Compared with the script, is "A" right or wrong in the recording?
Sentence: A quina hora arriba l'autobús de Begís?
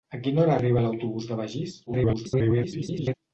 right